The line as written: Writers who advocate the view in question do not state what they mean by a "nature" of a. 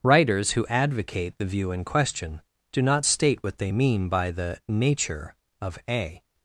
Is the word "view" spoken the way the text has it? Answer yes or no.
yes